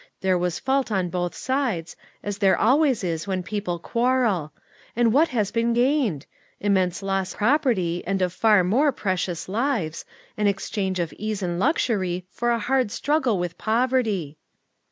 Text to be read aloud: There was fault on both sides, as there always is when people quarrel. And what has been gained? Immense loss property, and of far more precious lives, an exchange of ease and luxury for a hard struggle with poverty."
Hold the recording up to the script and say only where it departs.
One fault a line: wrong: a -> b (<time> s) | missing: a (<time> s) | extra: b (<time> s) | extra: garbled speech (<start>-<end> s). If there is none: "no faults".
no faults